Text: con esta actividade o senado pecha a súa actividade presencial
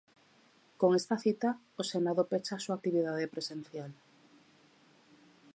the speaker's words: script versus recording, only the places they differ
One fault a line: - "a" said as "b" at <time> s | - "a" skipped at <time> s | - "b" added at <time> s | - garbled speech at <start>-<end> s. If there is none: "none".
- "actividade" said as "cita" at 1.2 s